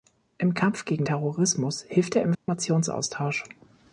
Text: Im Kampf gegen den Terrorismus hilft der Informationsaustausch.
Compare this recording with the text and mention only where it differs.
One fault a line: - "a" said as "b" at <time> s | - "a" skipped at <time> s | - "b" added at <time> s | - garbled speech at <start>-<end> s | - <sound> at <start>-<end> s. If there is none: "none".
- "den" skipped at 1.1 s
- dropout at 2.3-2.5 s